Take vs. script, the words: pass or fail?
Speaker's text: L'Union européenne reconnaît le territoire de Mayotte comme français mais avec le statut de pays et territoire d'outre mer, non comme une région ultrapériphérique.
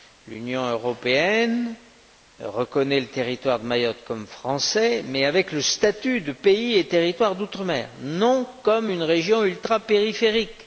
pass